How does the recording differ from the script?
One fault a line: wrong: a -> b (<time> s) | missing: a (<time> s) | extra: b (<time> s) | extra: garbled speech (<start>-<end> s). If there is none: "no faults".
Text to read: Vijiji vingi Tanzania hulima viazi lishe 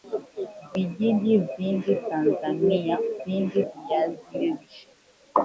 wrong: hulima -> vingi (3.2 s)